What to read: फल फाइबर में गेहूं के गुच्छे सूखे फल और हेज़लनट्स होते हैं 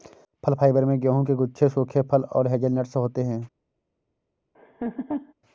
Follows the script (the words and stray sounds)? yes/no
no